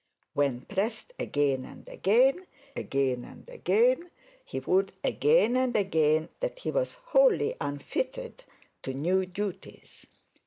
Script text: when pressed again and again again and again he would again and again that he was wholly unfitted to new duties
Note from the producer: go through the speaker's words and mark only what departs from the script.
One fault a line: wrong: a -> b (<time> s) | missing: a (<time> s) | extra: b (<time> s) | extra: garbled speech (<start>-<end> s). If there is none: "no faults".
no faults